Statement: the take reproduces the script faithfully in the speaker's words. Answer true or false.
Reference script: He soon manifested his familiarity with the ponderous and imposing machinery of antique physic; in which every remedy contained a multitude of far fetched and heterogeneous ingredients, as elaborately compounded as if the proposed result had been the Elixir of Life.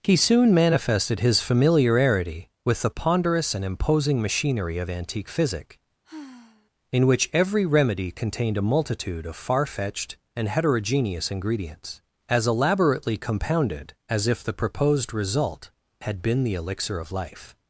true